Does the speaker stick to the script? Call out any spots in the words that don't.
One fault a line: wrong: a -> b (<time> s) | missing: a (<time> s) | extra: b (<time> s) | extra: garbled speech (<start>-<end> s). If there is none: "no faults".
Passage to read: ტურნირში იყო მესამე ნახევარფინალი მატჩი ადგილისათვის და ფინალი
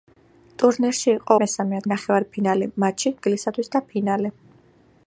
no faults